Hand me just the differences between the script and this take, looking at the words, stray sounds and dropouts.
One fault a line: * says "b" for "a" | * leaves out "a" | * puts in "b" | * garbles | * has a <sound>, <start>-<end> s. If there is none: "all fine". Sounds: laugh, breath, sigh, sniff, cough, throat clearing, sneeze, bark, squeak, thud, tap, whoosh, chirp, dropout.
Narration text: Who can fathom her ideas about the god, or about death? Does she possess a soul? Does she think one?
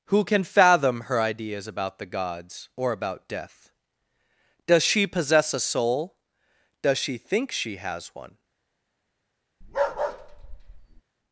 * says "gods" for "god"
* puts in "she has"
* has a bark, 9.6-11.0 s